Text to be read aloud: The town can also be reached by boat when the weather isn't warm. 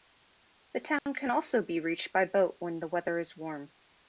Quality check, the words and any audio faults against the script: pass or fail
fail